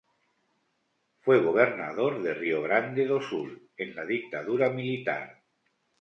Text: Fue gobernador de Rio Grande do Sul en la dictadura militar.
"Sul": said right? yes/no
yes